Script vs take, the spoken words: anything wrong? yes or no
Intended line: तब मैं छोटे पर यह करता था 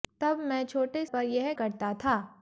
no